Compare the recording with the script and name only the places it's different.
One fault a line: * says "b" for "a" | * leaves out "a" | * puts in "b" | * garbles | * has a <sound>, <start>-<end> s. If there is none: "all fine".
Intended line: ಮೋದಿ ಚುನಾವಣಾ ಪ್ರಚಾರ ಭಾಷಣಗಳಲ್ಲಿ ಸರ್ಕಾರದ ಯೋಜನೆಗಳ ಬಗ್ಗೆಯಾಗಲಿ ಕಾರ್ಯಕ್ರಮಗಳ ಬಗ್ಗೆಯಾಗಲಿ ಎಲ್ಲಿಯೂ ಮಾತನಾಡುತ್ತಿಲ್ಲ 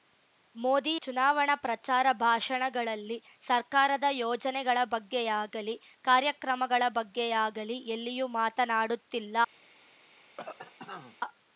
* has a cough, 10.4-11.2 s